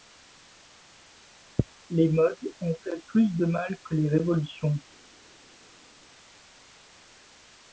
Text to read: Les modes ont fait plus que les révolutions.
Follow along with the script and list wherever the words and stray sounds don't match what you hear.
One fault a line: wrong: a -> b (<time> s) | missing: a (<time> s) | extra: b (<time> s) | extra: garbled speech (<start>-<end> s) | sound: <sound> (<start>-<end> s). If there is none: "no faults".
extra: de mal (3.3 s)